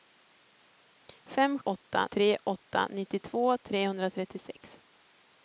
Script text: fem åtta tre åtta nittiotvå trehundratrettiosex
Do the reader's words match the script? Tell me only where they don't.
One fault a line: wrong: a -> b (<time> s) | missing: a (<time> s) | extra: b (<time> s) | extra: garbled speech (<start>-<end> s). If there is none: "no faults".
no faults